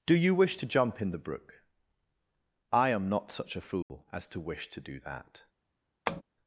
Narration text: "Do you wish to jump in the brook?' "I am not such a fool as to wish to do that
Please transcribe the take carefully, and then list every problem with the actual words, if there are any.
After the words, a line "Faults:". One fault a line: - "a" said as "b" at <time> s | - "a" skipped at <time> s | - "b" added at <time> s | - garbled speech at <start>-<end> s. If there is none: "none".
"Do you wish to jump in the brook?' "I am not such a fool as to wish to do that
Faults:
none